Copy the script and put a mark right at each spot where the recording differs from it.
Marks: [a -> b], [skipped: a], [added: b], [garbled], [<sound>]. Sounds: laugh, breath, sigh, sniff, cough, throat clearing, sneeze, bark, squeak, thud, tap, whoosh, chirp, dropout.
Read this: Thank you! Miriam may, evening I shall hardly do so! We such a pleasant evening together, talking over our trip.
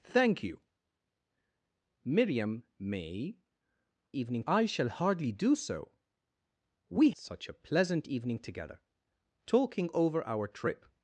Thank you! Miriam may, evening I shall hardly do so! We such a pleasant evening together, talking over our trip.